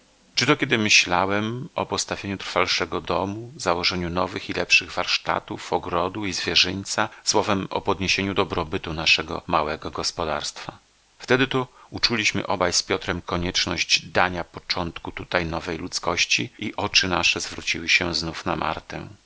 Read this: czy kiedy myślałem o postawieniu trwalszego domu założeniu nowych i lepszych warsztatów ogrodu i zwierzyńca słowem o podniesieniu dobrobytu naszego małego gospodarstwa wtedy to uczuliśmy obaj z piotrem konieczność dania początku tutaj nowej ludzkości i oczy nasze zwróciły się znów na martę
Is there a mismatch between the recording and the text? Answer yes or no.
yes